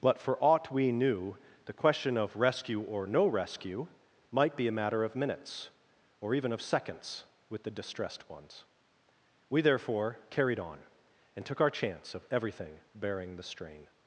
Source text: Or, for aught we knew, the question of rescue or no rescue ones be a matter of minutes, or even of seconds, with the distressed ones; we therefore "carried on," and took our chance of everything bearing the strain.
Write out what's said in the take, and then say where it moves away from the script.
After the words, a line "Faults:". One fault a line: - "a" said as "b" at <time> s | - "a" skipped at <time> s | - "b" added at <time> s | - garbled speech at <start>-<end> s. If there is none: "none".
But, for aught we knew, the question of rescue or no rescue might be a matter of minutes, or even of seconds, with the distressed ones; we therefore "carried on," and took our chance of everything bearing the strain.
Faults:
- "Or" said as "But" at 0.0 s
- "ones" said as "might" at 4.3 s